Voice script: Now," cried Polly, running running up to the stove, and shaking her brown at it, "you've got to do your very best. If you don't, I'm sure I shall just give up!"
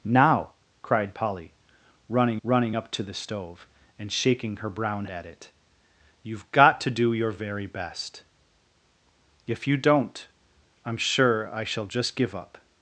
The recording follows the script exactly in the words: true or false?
true